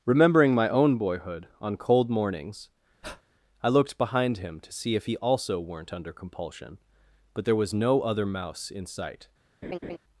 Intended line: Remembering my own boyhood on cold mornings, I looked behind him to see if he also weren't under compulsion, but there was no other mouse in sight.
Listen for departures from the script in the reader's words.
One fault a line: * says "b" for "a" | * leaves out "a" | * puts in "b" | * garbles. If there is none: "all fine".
all fine